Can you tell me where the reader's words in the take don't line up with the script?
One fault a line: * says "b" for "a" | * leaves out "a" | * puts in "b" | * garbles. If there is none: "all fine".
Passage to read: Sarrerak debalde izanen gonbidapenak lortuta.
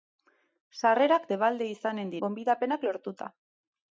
all fine